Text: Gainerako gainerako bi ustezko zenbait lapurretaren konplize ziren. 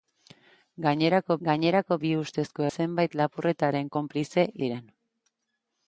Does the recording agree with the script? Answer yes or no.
yes